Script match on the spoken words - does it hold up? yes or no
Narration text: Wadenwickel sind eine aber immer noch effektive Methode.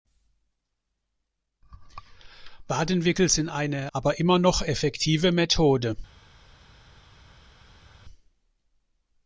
yes